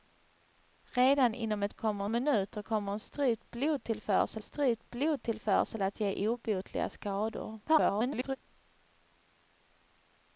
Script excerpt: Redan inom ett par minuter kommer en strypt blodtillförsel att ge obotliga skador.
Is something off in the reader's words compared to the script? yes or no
yes